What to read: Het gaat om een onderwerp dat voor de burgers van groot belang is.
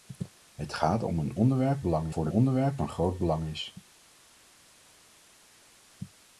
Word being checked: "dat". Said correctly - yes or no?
no